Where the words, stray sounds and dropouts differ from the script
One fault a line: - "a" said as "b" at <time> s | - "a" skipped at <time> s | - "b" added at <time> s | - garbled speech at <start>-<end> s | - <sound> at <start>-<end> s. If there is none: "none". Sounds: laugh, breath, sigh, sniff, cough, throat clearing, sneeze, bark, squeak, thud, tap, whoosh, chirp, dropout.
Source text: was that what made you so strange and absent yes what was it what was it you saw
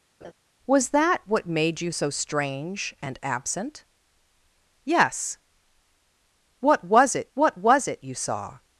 - laugh at 0.2-0.3 s